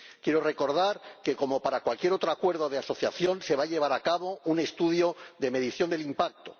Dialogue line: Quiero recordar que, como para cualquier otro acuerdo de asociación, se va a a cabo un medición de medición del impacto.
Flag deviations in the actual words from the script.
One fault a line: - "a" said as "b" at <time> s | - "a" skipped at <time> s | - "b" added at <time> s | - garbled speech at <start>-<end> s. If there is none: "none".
- "llevar" added at 3.7 s
- "medición" said as "estudio" at 4.6 s